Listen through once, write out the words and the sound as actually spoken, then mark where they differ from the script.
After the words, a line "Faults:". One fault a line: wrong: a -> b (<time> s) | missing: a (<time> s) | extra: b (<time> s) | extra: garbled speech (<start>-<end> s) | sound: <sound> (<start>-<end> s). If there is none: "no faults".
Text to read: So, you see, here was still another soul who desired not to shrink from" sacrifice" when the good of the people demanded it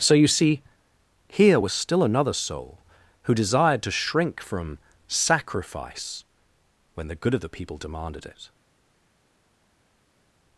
So, you see, here was still another soul who desired to shrink from" sacrifice" when the good of the people demanded it
Faults:
missing: not (3.8 s)